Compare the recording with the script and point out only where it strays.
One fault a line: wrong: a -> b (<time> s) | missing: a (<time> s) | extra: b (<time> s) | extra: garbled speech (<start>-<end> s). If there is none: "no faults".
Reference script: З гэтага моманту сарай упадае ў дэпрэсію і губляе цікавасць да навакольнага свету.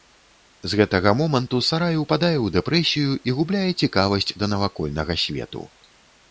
no faults